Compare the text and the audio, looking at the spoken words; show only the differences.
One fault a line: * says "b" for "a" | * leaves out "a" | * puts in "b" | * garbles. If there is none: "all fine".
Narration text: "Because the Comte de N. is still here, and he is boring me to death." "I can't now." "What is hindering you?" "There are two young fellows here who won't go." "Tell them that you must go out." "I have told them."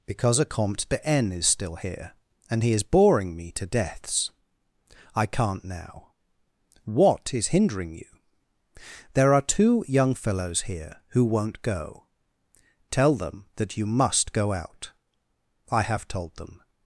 * says "a" for "the"
* says "deaths" for "death"